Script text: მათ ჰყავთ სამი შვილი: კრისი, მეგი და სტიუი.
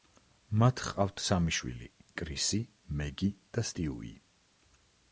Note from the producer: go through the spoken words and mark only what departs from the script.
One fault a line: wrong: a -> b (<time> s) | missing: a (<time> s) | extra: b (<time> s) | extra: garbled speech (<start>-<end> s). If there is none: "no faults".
no faults